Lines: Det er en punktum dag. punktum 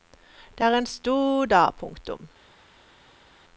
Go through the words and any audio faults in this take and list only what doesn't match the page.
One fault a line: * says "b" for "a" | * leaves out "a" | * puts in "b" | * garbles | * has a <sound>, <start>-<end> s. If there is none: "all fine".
* says "stor" for "punktum"